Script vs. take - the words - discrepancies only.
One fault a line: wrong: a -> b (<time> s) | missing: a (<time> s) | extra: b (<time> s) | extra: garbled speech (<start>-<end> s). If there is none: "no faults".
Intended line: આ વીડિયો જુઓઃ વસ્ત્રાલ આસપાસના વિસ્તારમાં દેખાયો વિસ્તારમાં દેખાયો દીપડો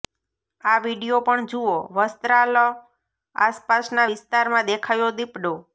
extra: પણ (1.2 s)
missing: વિસ્તારમાં દેખાયો (5.1 s)